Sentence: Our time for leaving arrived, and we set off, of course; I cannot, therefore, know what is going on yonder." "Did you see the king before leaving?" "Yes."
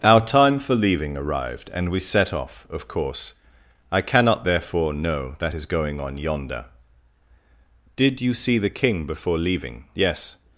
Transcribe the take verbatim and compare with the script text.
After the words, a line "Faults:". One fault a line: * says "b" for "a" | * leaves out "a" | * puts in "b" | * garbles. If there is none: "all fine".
Our time for leaving arrived, and we set off, of course; I cannot, therefore, know that is going on yonder." "Did you see the king before leaving?" "Yes."
Faults:
* says "that" for "what"